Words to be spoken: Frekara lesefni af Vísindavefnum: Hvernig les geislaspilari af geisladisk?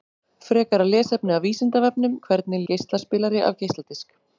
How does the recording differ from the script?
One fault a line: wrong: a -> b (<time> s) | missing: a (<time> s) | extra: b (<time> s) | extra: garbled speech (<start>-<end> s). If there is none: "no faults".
missing: les (2.6 s)